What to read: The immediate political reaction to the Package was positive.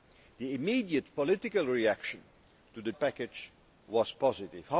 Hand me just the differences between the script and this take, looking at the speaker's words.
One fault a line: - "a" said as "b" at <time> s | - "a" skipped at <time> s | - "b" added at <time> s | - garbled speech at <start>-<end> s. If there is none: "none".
none